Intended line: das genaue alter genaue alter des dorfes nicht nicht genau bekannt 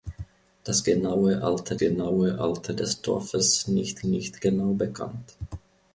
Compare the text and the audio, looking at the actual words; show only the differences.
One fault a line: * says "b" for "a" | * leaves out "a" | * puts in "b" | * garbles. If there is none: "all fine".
all fine